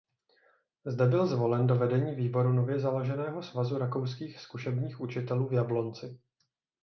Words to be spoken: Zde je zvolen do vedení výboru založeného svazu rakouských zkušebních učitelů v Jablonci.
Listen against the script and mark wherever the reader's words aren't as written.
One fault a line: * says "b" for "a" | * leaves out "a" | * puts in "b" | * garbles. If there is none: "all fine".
* says "byl" for "je"
* puts in "nově"